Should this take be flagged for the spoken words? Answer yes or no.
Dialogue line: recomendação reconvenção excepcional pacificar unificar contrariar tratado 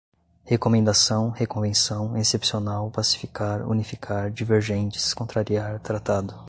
yes